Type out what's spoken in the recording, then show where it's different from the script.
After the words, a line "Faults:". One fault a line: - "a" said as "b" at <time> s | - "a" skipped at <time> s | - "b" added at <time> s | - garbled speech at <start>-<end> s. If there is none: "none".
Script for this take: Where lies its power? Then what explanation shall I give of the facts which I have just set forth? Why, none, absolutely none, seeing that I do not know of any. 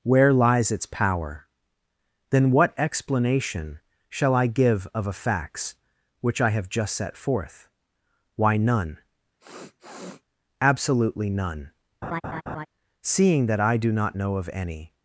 Where lies its power? Then what explanation shall I give of a facts which I have just set forth? Why, none, absolutely none, seeing that I do not know of any.
Faults:
- "the" said as "a" at 5.1 s